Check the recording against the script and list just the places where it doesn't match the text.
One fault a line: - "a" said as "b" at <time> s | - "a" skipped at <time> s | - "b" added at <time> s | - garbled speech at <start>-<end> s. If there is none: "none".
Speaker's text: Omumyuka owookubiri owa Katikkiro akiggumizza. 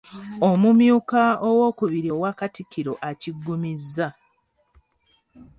none